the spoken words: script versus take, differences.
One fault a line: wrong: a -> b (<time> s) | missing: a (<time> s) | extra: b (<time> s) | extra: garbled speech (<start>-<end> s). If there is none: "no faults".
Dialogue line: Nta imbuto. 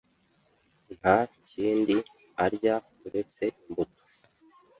extra: kindi arya uretse (1.5 s)